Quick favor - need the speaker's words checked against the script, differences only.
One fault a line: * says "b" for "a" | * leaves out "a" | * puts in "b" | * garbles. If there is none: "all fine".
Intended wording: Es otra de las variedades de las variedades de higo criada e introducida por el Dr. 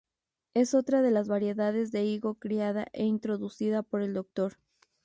* leaves out "las variedades de"